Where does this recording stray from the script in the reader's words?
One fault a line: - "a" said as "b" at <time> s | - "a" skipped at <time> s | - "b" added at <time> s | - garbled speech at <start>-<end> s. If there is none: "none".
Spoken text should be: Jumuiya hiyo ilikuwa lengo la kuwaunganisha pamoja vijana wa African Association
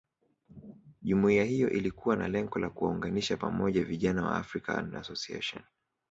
- "na" added at 2.1 s